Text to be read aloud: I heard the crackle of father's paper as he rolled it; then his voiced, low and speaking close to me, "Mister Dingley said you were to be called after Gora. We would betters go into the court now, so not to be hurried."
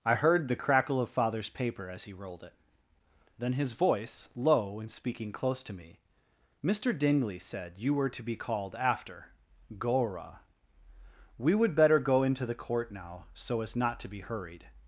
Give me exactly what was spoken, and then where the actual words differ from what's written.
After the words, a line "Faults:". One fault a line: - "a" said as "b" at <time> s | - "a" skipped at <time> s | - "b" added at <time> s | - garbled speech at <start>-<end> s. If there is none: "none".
I heard the crackle of father's paper as he rolled it; then his voice, low and speaking close to me, "Mister Dingley said you were to be called after Gora. We would better go into the court now, so as not to be hurried."
Faults:
- "voiced" said as "voice" at 3.7 s
- "betters" said as "better" at 11.7 s
- "as" added at 13.6 s